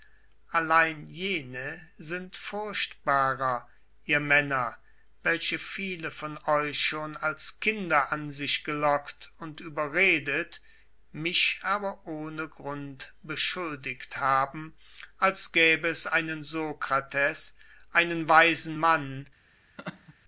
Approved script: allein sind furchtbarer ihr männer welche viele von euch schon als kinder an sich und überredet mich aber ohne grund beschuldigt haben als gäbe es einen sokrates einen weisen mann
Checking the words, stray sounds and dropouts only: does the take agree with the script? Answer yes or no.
no